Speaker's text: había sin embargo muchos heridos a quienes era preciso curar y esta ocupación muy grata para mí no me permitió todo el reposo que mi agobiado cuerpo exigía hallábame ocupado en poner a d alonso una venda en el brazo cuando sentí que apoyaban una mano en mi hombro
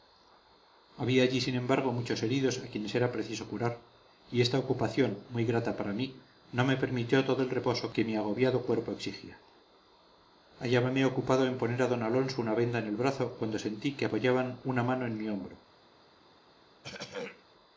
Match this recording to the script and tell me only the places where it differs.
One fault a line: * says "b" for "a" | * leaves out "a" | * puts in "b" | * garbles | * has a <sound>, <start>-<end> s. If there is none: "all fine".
* puts in "allí"
* has a throat clearing, 16.8-17.4 s